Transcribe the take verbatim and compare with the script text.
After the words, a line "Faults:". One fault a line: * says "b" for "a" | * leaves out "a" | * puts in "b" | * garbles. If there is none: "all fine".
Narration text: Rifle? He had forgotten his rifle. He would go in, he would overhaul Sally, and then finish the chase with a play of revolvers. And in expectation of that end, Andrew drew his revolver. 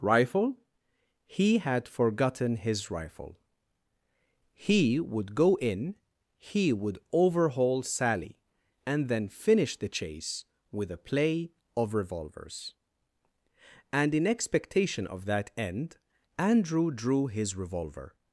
Rifle? He had forgotten his rifle. He would go in, he would overhaul Sally, and then finish the chase with a play of revolvers. And in expectation of that end, Andrew drew his revolver.
Faults:
all fine